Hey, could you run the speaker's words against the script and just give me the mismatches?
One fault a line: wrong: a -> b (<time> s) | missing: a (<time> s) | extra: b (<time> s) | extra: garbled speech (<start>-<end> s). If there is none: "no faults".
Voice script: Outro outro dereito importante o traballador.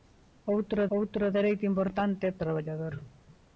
no faults